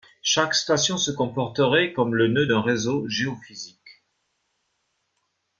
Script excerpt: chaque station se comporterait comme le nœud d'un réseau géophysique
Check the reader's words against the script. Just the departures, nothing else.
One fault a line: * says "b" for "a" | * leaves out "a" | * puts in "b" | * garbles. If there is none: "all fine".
all fine